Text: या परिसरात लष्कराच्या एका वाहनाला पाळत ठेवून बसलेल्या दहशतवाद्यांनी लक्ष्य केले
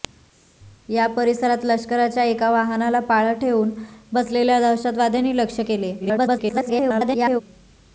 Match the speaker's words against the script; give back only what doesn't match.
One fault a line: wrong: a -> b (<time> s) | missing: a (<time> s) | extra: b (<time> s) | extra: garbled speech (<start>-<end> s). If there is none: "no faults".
extra: garbled speech (6.0-7.4 s)